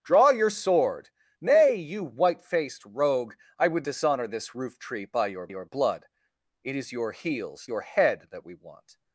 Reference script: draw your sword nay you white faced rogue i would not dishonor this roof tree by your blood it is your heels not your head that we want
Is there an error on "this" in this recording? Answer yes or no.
no